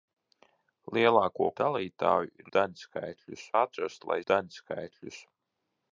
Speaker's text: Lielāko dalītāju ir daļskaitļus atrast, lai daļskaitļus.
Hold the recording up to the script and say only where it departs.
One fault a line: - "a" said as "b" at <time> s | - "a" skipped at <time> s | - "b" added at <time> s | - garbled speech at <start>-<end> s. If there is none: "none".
none